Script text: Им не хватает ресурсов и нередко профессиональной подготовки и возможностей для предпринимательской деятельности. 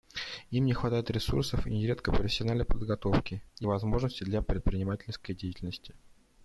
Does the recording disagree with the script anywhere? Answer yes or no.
no